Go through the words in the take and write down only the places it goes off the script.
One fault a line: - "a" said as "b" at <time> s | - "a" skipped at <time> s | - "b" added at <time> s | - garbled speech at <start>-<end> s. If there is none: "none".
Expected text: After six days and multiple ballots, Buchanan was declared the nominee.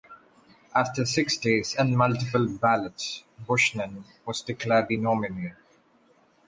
none